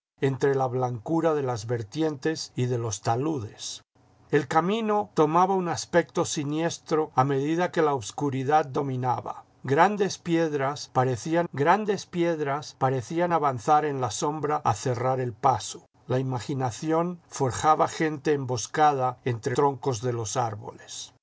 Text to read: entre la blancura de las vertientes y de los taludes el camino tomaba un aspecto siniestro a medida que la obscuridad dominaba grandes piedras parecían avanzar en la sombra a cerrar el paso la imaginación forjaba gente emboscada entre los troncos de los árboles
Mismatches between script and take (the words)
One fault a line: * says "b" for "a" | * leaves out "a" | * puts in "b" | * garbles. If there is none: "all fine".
* puts in "grandes piedras parecían"
* leaves out "los"